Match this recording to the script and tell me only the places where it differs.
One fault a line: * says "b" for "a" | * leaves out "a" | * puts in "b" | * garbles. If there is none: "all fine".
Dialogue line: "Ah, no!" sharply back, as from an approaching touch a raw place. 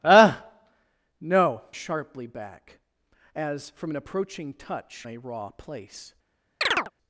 all fine